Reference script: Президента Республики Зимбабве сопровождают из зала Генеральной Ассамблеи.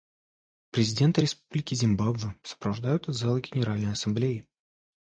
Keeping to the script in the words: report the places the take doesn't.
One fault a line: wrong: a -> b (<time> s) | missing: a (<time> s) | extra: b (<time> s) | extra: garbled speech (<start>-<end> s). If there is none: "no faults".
no faults